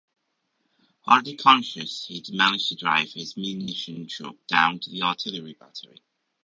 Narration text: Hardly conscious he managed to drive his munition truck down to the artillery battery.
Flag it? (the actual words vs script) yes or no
no